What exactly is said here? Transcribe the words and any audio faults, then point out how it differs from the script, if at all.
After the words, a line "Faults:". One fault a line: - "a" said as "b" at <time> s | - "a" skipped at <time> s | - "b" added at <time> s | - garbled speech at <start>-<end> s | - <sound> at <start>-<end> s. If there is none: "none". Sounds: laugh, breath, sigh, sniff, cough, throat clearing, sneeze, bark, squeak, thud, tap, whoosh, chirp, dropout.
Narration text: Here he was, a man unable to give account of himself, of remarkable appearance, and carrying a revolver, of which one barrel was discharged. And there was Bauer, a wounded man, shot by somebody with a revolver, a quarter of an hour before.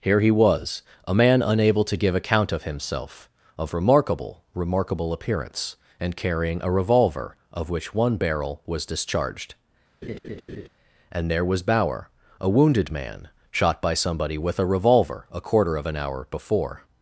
Here he was, a man unable to give account of himself, of remarkable remarkable appearance, and carrying a revolver, of which one barrel was discharged. And there was Bauer, a wounded man, shot by somebody with a revolver, a quarter of an hour before.
Faults:
- "remarkable" added at 4.5 s
- laugh at 10.0-10.7 s